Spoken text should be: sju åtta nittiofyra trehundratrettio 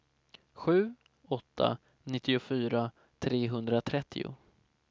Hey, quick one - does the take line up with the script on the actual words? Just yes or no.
yes